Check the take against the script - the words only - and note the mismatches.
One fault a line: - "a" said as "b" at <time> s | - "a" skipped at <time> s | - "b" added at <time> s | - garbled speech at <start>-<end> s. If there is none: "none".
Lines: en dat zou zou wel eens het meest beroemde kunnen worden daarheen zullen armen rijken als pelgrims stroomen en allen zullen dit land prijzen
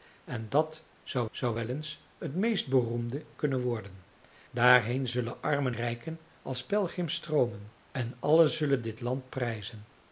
none